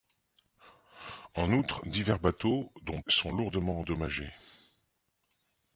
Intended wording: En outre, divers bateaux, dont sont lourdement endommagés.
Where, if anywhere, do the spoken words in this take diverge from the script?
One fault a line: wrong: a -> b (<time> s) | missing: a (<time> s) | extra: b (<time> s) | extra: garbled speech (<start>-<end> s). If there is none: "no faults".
no faults